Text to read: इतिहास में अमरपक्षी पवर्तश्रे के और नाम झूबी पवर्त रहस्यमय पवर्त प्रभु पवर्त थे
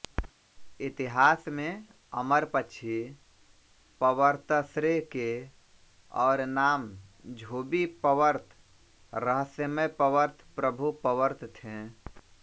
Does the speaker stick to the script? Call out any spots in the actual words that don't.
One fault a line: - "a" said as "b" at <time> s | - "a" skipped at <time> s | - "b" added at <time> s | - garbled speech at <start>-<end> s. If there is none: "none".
none